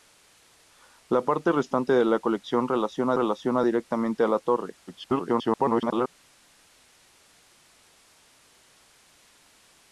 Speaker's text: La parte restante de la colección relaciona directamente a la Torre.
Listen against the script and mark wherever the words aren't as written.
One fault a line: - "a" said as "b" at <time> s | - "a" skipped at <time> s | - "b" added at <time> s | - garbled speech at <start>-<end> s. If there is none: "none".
- "relaciona" added at 3.1 s
- garbled speech at 4.9-6.1 s